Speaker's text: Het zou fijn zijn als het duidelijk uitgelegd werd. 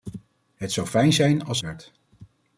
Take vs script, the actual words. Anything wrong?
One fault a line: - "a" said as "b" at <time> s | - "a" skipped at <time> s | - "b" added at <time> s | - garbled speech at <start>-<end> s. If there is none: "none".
- "het duidelijk uitgelegd" skipped at 1.6 s